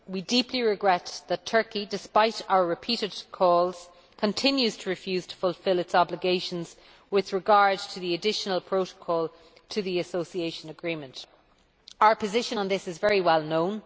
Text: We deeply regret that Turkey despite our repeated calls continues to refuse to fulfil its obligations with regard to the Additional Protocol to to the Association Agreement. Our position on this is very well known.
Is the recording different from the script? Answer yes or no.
yes